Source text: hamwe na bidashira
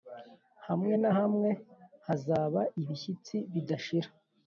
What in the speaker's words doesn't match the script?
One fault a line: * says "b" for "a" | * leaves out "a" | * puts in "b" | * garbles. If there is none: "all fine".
* puts in "hamwe hazaba ibishyitsi"